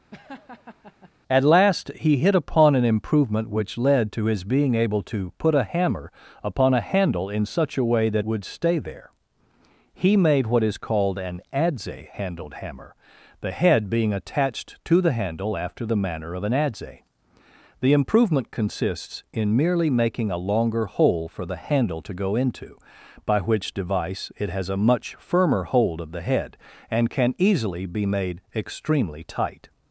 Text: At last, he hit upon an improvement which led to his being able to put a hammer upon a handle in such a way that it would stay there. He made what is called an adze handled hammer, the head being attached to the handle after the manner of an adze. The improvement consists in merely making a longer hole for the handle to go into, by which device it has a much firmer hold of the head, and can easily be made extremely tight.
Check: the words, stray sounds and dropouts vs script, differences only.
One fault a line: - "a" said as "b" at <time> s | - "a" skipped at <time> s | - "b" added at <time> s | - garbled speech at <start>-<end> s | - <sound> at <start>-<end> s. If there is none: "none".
- laugh at 0.1-1.1 s
- "it" skipped at 8.3 s